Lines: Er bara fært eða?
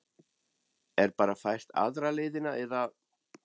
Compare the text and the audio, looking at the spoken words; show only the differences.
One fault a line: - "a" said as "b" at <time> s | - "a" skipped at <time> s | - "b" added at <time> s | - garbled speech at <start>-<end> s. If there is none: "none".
- "aðra leiðina" added at 1.9 s